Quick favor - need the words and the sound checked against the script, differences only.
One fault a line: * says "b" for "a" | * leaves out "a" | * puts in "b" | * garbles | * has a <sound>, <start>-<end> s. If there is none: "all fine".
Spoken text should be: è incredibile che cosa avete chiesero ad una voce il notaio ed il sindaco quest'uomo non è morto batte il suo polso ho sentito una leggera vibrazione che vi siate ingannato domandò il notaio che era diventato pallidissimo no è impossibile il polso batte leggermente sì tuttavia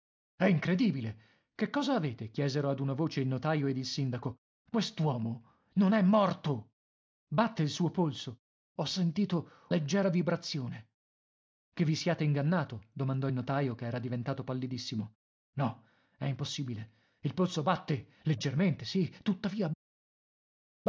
* leaves out "una"